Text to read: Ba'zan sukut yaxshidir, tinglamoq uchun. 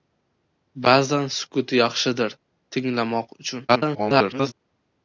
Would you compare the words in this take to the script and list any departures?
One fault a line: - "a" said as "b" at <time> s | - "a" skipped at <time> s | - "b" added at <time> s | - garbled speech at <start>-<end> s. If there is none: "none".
- garbled speech at 3.7-4.5 s